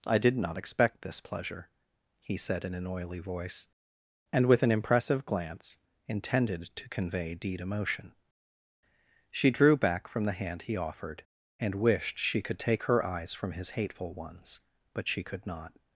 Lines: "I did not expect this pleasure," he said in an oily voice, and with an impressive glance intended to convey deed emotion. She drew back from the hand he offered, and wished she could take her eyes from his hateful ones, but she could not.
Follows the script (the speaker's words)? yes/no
yes